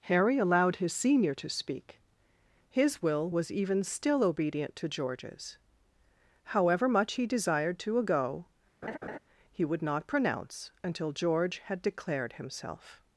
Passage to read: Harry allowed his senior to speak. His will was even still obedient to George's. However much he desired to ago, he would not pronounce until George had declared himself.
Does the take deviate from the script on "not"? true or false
false